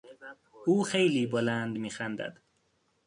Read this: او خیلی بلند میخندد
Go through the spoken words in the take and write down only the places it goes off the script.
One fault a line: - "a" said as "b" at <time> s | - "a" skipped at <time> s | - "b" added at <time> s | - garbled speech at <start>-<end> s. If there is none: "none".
none